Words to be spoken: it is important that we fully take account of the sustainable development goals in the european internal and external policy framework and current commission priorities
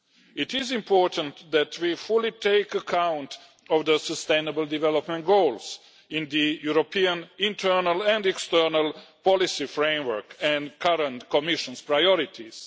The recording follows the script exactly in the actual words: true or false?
true